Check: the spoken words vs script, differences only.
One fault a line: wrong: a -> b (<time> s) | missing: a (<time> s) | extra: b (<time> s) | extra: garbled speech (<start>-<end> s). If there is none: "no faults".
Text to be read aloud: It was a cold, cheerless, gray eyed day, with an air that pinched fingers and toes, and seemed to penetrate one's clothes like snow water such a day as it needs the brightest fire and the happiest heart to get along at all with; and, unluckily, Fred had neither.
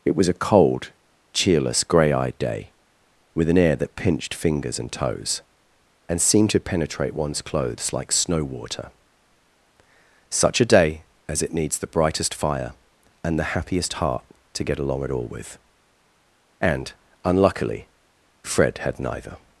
no faults